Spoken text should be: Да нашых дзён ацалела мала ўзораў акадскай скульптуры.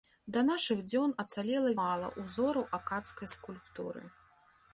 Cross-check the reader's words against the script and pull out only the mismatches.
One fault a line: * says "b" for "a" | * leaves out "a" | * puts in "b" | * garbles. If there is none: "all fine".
all fine